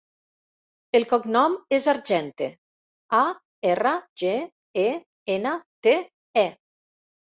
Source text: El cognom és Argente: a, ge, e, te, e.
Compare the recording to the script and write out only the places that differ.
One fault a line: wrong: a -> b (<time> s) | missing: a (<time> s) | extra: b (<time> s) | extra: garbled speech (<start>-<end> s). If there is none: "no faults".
extra: erra (3.8 s)
extra: ena (5.4 s)